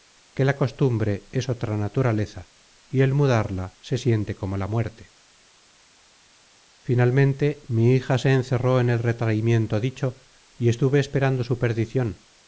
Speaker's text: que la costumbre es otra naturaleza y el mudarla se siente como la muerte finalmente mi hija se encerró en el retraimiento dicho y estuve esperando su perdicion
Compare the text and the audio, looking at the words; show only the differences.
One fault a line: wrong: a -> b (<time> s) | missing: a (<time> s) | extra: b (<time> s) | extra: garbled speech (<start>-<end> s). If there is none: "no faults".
no faults